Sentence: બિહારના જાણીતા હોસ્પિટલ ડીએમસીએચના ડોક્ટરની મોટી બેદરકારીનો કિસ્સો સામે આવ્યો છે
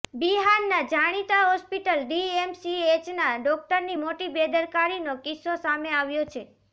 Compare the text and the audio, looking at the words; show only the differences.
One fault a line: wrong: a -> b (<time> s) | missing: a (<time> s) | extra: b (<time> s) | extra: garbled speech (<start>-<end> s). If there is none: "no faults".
no faults